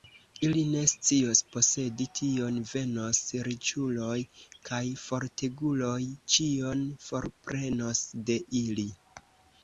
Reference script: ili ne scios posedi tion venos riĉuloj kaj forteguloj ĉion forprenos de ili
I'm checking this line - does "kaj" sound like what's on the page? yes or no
yes